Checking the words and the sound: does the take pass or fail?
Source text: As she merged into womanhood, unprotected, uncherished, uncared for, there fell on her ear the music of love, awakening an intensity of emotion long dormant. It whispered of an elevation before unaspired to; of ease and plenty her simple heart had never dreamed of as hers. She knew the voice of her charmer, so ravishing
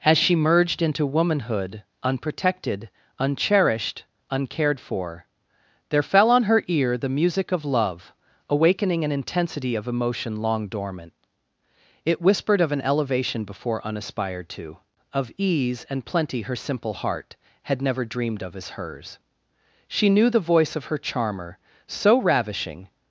pass